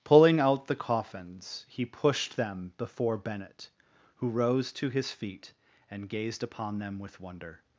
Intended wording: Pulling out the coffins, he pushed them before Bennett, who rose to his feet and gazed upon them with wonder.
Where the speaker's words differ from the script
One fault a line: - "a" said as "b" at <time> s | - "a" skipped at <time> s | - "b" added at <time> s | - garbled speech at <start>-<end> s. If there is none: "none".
none